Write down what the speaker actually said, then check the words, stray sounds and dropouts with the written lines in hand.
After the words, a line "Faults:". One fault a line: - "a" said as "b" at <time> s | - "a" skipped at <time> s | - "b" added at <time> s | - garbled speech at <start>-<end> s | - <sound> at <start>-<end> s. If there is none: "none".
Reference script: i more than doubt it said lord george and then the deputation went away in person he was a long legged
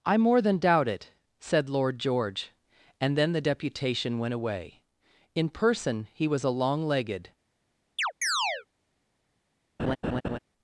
i more than doubt it said lord george and then the deputation went away in person he was a long legged
Faults:
- chirp at 8.0-8.7 s
- laugh at 9.8-10.4 s